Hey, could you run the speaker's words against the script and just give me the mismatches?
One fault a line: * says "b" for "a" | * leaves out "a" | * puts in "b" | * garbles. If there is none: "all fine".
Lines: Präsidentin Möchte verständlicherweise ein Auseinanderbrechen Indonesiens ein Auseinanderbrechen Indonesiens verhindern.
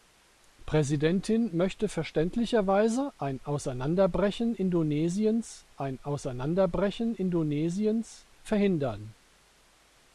all fine